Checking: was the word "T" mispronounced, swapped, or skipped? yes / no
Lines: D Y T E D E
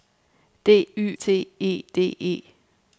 no